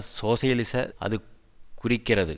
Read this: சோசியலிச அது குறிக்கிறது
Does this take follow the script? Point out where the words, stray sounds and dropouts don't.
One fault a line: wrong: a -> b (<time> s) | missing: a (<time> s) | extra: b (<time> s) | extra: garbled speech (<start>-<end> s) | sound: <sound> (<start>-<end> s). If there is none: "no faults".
no faults